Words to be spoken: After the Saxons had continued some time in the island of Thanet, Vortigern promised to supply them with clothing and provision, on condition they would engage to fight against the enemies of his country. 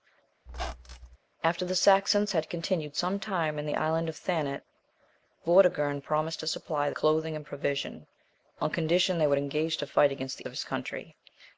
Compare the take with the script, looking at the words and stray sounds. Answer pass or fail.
fail